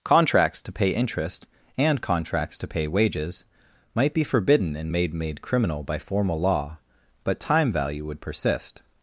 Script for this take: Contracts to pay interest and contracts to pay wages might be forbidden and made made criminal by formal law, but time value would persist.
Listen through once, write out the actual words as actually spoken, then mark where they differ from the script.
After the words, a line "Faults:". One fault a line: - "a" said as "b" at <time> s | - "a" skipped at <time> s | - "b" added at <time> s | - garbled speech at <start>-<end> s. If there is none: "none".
Contracts to pay interest and contracts to pay wages might be forbidden and made made criminal by formal law, but time value would persist.
Faults:
none